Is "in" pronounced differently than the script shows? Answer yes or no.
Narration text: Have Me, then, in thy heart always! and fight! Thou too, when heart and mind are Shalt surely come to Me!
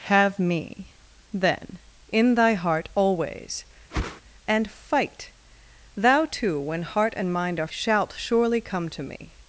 no